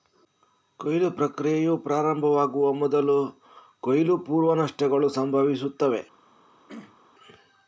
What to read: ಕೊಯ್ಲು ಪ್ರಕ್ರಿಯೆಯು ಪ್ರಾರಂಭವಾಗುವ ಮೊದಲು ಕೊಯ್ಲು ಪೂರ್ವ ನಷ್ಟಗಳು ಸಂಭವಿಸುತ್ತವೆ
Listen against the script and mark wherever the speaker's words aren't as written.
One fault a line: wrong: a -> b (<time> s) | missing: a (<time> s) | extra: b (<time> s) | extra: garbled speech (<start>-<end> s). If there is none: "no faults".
no faults